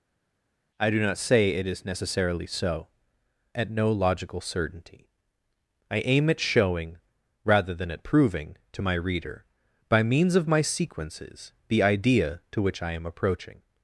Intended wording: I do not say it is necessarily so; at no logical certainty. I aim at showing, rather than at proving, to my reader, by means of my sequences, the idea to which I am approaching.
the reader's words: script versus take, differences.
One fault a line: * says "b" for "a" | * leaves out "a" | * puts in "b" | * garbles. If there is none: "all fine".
all fine